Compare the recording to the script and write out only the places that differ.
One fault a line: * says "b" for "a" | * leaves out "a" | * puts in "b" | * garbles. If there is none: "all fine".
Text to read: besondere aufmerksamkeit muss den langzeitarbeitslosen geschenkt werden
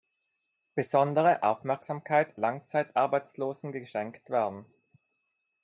* leaves out "muss den"